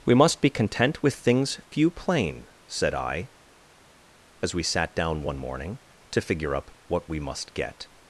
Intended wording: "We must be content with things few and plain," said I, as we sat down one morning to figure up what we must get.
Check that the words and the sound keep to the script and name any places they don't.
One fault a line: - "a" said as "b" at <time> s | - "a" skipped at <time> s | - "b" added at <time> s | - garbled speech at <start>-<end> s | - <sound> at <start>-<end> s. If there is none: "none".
- "and" skipped at 1.9 s